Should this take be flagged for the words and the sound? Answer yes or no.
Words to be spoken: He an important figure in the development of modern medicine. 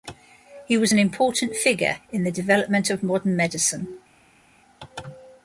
yes